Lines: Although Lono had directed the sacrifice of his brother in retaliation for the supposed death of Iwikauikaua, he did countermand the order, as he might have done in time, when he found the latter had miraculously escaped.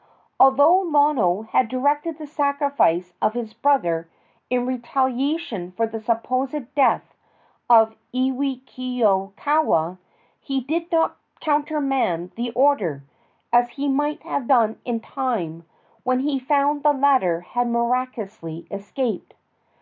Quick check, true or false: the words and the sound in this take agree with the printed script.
false